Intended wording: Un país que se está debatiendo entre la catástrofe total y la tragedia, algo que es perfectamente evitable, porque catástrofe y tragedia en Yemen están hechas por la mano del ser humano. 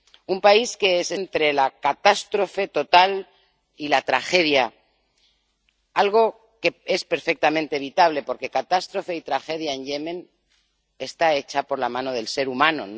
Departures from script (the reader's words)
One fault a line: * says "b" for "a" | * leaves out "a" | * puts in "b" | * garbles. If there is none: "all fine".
* leaves out "está debatiendo"